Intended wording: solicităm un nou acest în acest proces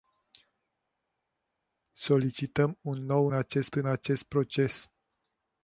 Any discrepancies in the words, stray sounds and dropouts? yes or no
no